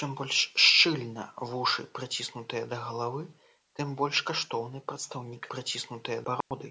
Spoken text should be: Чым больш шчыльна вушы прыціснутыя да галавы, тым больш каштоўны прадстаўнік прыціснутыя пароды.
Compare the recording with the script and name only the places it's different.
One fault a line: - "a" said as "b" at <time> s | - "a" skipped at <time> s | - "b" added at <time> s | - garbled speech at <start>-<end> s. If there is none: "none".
none